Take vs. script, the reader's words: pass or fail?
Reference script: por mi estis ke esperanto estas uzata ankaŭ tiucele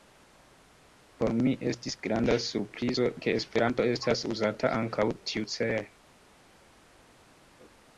fail